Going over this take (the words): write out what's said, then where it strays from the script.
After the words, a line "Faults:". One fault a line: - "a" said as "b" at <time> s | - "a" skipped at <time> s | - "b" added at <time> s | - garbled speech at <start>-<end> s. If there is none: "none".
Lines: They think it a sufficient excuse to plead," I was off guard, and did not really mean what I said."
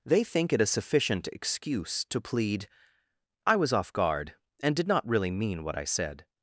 They think it a sufficient excuse to plead," I was off guard, and did not really mean what I said."
Faults:
none